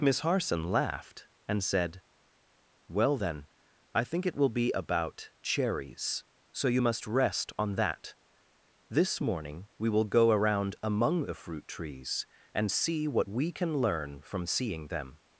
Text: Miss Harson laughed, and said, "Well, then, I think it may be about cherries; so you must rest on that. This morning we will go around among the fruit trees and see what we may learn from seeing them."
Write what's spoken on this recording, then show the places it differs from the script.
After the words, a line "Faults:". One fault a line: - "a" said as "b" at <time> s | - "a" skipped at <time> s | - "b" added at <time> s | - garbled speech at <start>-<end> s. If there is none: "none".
Miss Harson laughed, and said, "Well, then, I think it will be about cherries; so you must rest on that. This morning we will go around among the fruit trees and see what we can learn from seeing them."
Faults:
- "may" said as "will" at 4.3 s
- "may" said as "can" at 13.5 s